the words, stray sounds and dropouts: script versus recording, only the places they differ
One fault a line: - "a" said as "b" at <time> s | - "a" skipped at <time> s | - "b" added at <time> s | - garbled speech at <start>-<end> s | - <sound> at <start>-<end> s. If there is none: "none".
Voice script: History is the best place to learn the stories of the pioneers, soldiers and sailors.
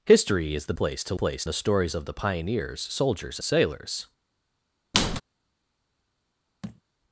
- "best" skipped at 0.7 s
- "learn" said as "place" at 1.2 s
- "and" skipped at 3.4 s
- squeak at 4.9-5.2 s
- thud at 6.6-6.8 s